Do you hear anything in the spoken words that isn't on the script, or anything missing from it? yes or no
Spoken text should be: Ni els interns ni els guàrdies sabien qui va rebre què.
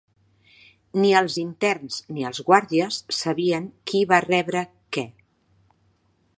no